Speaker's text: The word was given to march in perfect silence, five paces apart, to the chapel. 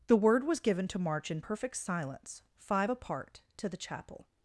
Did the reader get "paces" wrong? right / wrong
wrong